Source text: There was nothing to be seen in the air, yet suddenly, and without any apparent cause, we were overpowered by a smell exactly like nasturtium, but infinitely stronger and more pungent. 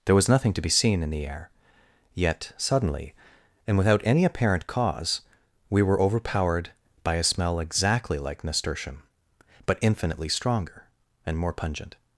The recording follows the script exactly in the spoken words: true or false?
true